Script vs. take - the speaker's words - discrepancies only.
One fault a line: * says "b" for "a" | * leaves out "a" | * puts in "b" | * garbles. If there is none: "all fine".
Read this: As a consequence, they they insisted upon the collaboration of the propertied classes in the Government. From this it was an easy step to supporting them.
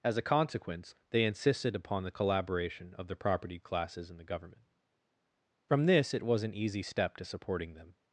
* leaves out "they"